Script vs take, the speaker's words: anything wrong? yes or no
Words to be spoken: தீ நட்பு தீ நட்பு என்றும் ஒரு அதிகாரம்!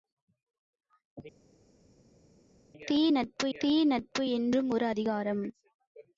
no